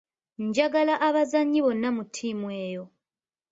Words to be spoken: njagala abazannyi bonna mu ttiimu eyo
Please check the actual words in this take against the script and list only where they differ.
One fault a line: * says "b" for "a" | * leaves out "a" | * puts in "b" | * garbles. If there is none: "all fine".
all fine